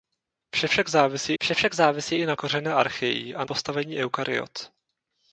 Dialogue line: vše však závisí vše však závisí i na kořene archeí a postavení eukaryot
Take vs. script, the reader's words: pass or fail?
pass